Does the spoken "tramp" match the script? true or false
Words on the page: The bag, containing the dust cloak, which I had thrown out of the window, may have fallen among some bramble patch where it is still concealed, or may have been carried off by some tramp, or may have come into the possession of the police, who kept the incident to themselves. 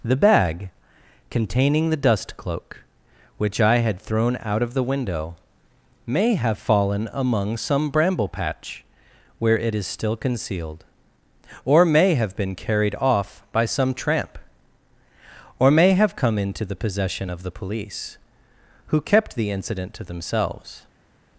true